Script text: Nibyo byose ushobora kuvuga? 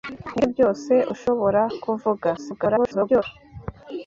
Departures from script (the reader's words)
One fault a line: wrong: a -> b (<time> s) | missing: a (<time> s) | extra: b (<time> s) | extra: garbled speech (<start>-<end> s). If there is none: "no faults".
extra: garbled speech (2.4-3.2 s)